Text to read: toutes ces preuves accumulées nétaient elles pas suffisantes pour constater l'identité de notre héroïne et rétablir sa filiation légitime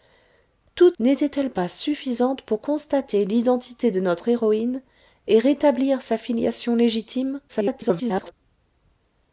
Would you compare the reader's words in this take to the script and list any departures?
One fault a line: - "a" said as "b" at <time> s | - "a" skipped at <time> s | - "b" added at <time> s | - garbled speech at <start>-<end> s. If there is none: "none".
- "ces preuves accumulées" skipped at 1.0 s
- garbled speech at 7.5-8.3 s